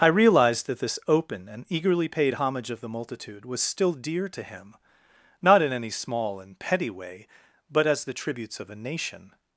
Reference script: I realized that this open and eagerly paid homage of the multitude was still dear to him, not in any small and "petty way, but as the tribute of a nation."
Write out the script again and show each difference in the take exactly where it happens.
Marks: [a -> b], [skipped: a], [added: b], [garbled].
I realized that this open and eagerly paid homage of the multitude was still dear to him, not in any small and "petty way, but as the [tribute -> tributes] of a nation."